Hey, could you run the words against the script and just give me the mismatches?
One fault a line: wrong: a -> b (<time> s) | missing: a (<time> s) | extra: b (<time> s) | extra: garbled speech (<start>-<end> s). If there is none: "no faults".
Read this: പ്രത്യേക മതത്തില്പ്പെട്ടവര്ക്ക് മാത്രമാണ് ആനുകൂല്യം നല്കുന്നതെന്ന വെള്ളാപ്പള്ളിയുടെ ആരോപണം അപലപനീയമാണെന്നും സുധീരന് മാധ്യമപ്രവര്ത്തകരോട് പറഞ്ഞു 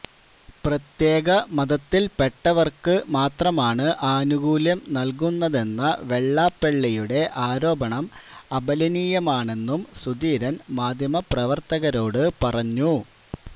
no faults